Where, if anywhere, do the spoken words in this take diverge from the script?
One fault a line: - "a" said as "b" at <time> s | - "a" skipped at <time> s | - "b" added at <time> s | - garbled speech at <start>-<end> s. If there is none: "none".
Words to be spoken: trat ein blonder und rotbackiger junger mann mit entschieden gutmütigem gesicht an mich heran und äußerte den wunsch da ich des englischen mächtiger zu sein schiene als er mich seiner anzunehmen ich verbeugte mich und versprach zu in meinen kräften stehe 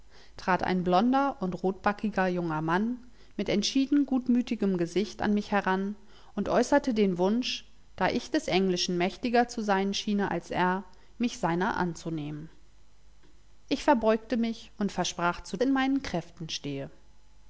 none